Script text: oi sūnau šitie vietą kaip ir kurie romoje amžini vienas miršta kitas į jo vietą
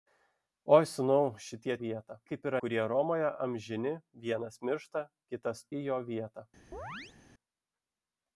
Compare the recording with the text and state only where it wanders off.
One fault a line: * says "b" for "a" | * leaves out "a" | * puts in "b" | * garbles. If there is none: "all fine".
all fine